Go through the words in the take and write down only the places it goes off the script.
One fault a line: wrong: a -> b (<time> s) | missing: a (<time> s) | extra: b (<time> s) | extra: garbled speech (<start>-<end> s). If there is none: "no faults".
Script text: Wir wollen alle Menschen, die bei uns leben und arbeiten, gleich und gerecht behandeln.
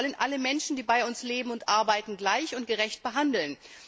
no faults